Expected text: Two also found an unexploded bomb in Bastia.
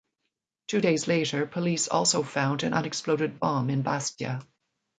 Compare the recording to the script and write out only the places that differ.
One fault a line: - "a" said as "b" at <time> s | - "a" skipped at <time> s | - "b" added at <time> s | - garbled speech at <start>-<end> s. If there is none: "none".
- "days later police" added at 0.8 s